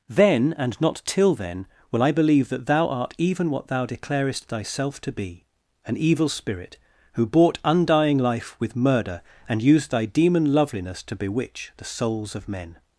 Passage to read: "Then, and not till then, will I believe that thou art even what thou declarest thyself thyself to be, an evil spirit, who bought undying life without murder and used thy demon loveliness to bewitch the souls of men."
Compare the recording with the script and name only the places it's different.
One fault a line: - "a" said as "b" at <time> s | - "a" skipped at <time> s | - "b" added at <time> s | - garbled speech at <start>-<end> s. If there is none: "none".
- "thyself" skipped at 5.0 s
- "without" said as "with" at 8.6 s